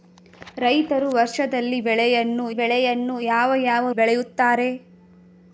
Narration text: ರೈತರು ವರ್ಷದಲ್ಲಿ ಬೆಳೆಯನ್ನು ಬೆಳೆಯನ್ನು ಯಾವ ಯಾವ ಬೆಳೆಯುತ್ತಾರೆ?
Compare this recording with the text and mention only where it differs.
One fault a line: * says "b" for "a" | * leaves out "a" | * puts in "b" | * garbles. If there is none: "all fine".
all fine